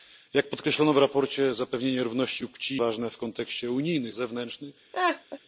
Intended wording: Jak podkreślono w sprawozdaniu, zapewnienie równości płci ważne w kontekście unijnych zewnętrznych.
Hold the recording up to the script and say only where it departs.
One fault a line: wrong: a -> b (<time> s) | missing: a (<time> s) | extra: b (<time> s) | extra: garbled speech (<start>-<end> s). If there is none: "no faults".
no faults